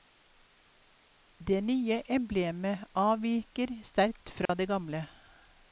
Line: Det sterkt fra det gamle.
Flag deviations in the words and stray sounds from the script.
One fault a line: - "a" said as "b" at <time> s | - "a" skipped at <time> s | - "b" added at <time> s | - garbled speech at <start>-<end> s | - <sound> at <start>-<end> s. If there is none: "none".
- "nye emblemet avviker" added at 1.7 s
- dropout at 4.5-4.5 s